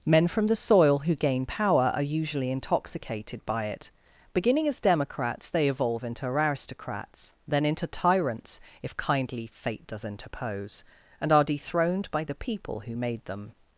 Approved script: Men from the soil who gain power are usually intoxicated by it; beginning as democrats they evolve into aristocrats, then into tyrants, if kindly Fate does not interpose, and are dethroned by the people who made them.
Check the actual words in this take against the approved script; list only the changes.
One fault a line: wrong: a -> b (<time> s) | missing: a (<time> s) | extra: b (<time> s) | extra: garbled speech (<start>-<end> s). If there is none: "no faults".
missing: not (10.0 s)